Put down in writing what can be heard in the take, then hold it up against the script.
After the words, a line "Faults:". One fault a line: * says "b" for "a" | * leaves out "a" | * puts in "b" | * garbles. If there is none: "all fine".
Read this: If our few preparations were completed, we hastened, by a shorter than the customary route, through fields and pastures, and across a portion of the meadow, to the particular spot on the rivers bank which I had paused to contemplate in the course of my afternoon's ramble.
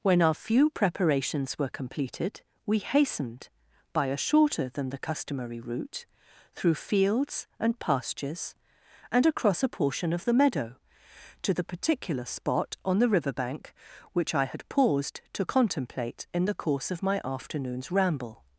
When our few preparations were completed, we hastened, by a shorter than the customary route, through fields and pastures, and across a portion of the meadow, to the particular spot on the river bank which I had paused to contemplate in the course of my afternoon's ramble.
Faults:
* says "When" for "If"
* says "river" for "rivers"